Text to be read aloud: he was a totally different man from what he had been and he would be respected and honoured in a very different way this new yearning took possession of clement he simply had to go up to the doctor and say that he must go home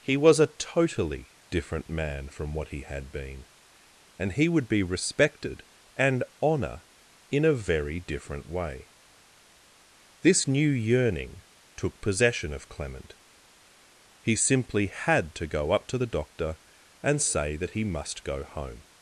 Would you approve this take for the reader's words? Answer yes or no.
no